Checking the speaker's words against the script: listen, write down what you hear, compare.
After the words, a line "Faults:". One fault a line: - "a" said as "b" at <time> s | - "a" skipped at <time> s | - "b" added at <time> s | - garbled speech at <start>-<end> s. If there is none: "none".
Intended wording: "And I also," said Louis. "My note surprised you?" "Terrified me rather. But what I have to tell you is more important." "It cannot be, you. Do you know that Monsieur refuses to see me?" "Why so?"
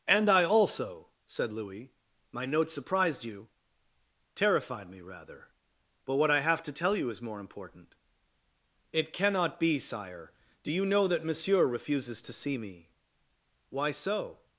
"And I also," said Louis. "My note surprised you?" "Terrified me rather. But what I have to tell you is more important." "It cannot be, sire. Do you know that Monsieur refuses to see me?" "Why so?"
Faults:
- "you" said as "sire" at 9.8 s